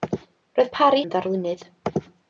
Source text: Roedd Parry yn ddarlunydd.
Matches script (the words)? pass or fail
pass